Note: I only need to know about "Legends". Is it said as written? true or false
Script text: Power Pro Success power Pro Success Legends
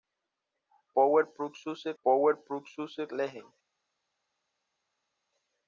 true